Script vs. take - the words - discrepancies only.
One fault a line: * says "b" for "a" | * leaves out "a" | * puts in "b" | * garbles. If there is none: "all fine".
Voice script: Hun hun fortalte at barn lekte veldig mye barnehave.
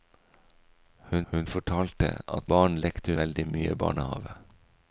all fine